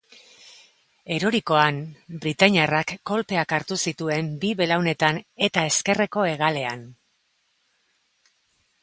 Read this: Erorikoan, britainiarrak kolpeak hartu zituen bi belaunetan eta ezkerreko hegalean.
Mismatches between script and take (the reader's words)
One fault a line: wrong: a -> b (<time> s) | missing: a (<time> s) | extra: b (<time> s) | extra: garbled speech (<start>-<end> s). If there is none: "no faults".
no faults